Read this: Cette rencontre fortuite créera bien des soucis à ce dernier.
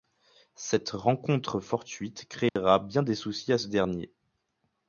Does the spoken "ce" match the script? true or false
true